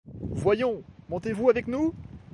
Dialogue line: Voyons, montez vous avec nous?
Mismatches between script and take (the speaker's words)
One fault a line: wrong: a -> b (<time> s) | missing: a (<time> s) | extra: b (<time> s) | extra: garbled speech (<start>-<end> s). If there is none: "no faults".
no faults